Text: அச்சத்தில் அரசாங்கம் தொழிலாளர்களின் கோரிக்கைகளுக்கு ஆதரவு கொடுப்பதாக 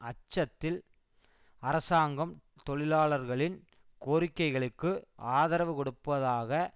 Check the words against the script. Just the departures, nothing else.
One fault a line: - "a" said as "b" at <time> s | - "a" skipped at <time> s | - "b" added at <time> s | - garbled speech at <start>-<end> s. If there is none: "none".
none